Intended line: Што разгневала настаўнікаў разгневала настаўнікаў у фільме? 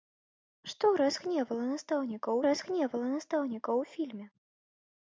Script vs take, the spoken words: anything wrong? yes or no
no